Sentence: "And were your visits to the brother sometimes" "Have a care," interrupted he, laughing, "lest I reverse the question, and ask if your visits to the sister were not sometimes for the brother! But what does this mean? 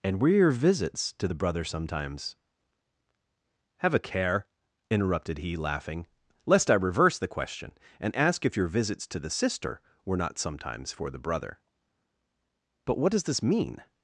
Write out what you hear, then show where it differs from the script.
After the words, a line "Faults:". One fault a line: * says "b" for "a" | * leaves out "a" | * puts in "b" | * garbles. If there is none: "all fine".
"And were your visits to the brother sometimes" "Have a care," interrupted he, laughing, "lest I reverse the question, and ask if your visits to the sister were not sometimes for the brother! But what does this mean?
Faults:
all fine